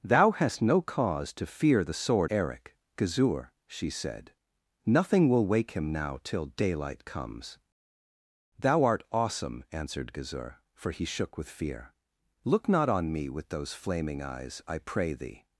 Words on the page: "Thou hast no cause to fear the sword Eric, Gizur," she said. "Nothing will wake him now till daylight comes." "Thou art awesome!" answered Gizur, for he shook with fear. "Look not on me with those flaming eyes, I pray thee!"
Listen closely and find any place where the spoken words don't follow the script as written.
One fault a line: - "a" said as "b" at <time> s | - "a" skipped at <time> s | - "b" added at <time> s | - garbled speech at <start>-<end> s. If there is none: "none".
none